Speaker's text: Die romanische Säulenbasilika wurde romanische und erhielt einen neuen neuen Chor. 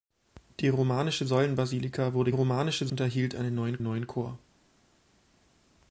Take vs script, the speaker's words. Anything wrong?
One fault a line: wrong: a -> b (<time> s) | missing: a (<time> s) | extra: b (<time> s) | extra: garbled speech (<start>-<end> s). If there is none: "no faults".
no faults